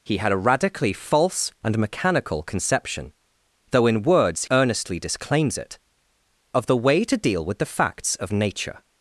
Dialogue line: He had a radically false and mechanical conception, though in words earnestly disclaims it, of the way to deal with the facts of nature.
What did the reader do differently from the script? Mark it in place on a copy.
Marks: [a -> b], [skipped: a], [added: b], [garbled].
He had a radically false and mechanical conception, though in words earnestly disclaims it, of the way to deal with the facts of nature.